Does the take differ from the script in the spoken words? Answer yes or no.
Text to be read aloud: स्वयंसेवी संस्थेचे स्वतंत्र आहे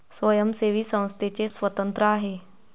no